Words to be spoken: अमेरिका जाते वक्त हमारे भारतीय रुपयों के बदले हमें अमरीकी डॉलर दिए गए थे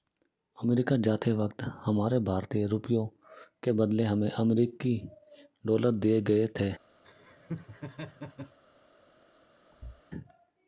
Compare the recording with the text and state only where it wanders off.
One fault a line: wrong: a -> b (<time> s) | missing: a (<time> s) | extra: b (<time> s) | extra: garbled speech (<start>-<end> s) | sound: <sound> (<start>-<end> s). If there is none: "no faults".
sound: laugh (7.0-8.6 s)
sound: thud (9.7-10.0 s)